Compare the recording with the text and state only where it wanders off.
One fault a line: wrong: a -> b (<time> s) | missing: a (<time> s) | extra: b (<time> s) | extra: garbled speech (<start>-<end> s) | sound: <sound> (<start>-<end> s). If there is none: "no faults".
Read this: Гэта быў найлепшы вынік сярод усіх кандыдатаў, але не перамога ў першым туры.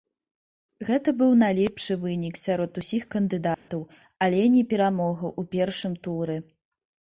sound: dropout (3.5-3.7 s)